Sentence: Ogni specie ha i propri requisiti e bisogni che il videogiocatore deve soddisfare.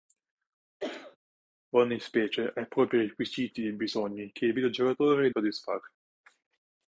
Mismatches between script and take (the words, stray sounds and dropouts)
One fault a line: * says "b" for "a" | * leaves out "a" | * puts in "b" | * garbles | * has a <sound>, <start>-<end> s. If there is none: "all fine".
* has a cough, 0.8-1.2 s
* leaves out "deve"